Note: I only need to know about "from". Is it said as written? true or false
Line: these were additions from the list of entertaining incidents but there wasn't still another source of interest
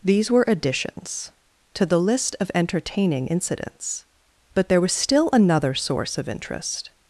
false